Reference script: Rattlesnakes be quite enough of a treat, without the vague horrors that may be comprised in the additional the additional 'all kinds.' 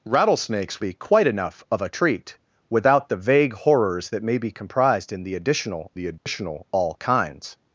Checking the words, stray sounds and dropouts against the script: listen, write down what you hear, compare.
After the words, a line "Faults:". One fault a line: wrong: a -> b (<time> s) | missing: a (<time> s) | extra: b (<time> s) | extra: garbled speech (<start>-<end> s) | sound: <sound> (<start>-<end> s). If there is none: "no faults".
Rattlesnakes be quite enough of a treat, without the vague horrors that may be comprised in the additional the additional 'all kinds.'
Faults:
sound: dropout (6.2-6.3 s)